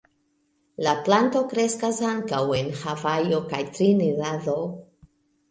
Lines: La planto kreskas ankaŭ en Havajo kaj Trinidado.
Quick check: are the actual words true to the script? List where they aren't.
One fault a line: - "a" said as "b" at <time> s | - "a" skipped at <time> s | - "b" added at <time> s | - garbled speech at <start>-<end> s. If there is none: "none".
none